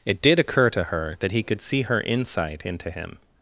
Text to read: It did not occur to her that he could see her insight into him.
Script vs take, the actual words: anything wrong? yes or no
yes